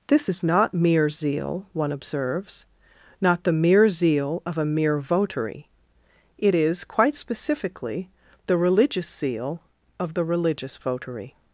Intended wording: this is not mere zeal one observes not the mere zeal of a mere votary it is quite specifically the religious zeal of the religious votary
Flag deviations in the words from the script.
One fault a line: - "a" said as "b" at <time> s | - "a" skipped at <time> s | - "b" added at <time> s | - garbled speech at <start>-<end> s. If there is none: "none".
none